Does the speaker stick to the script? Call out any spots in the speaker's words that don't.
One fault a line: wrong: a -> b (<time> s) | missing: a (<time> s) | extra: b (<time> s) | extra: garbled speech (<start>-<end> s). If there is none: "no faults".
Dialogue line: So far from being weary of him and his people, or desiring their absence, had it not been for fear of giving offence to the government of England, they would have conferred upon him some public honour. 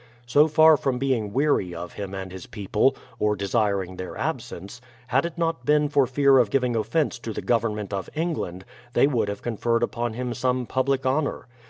no faults